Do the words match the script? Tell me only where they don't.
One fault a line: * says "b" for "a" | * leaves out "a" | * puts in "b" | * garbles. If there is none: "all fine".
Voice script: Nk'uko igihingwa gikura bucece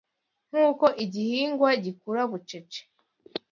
all fine